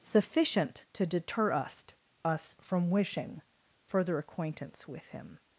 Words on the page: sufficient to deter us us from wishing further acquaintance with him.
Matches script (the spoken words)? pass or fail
pass